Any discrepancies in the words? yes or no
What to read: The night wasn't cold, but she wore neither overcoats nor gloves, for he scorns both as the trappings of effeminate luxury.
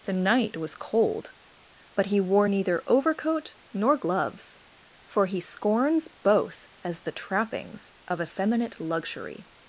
yes